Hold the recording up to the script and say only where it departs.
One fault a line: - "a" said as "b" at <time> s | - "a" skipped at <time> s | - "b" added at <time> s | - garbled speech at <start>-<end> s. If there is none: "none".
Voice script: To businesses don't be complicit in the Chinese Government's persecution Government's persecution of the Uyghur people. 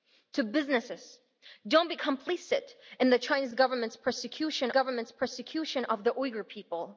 none